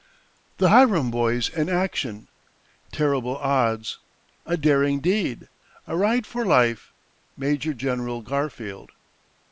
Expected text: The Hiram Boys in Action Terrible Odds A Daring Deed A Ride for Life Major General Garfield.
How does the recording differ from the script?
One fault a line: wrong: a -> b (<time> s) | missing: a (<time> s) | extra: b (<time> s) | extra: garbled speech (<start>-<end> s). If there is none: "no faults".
no faults